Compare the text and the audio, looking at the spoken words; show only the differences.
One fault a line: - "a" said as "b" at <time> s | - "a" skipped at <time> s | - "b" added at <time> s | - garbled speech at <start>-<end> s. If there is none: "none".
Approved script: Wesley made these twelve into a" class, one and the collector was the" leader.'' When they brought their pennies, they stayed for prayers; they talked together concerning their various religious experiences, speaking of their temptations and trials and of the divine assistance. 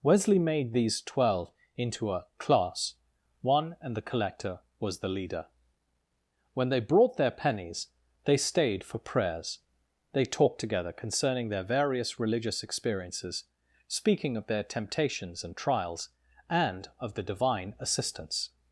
none